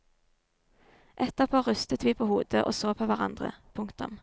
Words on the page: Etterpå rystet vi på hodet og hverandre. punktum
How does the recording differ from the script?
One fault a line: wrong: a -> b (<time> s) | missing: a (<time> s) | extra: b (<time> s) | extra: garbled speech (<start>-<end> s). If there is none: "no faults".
extra: så på (2.7 s)